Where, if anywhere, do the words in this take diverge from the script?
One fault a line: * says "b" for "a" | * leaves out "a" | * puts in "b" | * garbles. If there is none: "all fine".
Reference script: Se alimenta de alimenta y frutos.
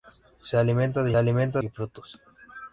all fine